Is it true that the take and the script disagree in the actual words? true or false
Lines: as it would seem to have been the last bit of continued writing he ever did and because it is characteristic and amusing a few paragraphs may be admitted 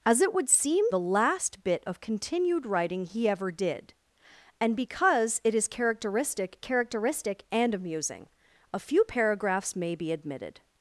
true